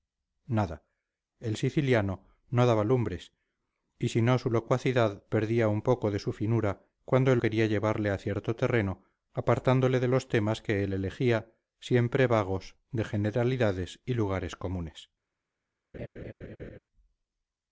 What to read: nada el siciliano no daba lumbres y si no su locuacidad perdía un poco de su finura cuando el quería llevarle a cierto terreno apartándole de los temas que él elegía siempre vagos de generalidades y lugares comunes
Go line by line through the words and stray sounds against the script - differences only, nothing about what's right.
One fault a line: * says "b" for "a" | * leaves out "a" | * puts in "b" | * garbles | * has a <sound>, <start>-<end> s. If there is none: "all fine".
* has a laugh, 15.9-16.8 s